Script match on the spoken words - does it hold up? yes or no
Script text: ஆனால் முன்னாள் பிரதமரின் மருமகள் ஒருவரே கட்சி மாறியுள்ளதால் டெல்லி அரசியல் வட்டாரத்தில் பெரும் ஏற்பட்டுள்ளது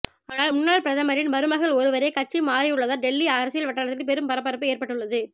no